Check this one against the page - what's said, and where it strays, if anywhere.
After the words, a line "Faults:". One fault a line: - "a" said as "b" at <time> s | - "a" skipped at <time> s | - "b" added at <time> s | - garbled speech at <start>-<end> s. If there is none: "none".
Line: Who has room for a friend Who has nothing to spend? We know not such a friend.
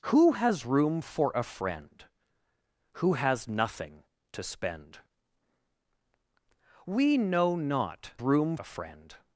Who has room for a friend Who has nothing to spend? We know not room a friend.
Faults:
- "such" said as "room" at 8.2 s